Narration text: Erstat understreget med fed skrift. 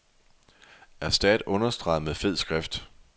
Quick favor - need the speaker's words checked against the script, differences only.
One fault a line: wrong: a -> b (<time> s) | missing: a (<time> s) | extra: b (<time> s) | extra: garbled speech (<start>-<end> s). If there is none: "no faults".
no faults